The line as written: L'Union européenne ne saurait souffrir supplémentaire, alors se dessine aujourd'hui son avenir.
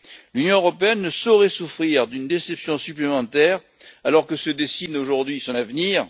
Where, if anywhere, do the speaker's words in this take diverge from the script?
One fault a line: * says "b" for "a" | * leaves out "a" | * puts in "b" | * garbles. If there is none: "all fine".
* puts in "d'une déception"
* puts in "que"